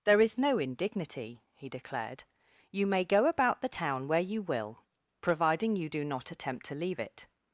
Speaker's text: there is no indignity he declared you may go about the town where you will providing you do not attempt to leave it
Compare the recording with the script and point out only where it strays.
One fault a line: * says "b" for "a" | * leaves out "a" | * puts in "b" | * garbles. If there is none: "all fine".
all fine